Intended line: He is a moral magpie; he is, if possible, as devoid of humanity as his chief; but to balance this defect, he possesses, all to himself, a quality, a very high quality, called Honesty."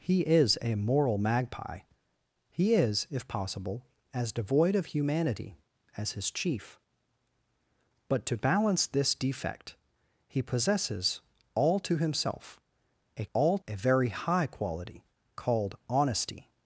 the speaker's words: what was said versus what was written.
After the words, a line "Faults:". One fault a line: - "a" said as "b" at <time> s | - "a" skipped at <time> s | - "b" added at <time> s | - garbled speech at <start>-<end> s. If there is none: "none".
He is a moral magpie; he is, if possible, as devoid of humanity as his chief; but to balance this defect, he possesses, all to himself, a all, a very high quality, called Honesty."
Faults:
- "quality" said as "all" at 13.3 s